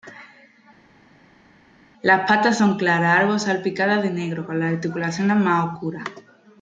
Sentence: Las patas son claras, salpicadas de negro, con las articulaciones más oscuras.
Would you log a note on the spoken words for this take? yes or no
yes